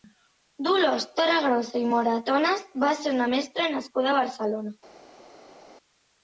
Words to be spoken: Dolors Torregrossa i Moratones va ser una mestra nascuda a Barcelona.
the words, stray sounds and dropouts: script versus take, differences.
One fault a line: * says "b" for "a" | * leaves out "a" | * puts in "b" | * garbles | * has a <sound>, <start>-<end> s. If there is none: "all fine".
all fine